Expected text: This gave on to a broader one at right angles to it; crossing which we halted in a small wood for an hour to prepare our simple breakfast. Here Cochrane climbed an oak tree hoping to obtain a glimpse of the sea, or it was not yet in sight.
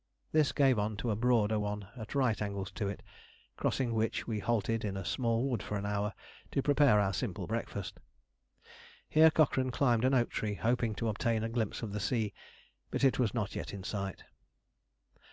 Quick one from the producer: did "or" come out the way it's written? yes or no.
no